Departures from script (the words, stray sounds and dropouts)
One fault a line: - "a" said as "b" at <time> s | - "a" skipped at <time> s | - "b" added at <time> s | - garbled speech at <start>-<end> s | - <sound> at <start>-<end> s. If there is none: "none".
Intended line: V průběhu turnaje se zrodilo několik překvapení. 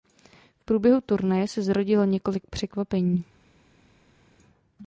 none